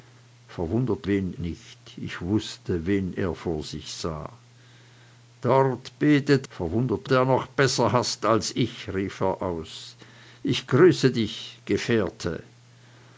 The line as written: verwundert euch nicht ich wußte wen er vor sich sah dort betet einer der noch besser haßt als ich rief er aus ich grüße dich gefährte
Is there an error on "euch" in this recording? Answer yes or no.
yes